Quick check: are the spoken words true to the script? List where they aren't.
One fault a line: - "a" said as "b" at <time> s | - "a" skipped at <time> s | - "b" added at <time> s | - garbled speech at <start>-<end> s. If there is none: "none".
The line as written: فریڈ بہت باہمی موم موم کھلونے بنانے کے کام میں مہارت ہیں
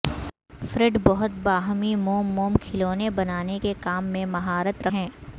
none